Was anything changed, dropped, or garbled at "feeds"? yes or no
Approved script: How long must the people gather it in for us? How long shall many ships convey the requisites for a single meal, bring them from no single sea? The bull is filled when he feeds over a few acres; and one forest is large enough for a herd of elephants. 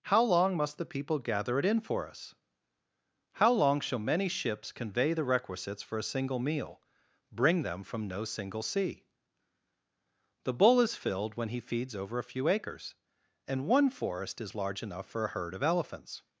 no